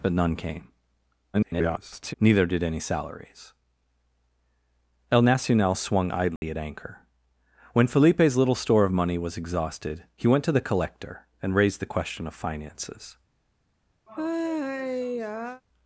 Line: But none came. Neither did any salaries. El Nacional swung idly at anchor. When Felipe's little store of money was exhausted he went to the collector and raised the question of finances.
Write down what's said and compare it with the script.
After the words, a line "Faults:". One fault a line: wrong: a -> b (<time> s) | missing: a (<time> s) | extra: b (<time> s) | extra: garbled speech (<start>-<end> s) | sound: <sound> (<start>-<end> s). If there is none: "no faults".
But none came. [garbled] Neither did any salaries. El Nacional swung idly at anchor. When Felipe's little store of money was exhausted he went to the collector and raised the question of finances.
Faults:
extra: garbled speech (1.3-2.1 s)
sound: dropout (6.4-6.4 s)
sound: sigh (14.1-15.6 s)